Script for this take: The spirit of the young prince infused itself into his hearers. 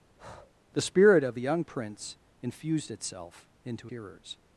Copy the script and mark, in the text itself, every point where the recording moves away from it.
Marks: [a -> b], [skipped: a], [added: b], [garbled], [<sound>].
[breath] The spirit of the young prince infused itself into [skipped: his] hearers.